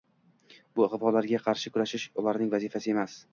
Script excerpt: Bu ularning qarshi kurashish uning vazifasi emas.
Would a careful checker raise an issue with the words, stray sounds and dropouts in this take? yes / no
yes